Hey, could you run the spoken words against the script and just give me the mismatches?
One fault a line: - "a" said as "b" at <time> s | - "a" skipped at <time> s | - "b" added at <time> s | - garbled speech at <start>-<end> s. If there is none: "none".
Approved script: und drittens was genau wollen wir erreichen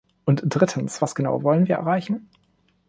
none